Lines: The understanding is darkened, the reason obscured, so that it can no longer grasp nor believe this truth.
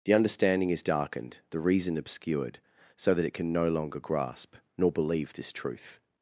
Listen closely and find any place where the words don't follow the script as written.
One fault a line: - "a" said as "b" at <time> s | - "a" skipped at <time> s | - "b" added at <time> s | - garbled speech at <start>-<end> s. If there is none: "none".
none